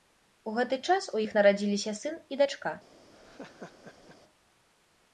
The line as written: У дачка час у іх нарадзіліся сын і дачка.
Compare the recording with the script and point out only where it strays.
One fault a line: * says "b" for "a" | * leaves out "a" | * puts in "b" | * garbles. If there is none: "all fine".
* says "гэты" for "дачка"